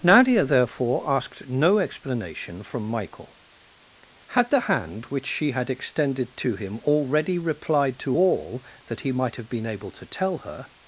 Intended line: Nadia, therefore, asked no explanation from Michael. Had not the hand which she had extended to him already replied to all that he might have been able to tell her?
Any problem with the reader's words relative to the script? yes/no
yes